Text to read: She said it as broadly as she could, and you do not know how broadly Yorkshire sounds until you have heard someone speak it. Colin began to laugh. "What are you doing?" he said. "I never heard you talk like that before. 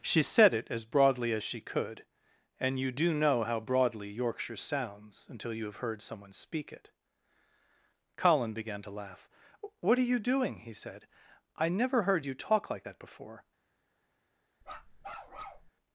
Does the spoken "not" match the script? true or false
false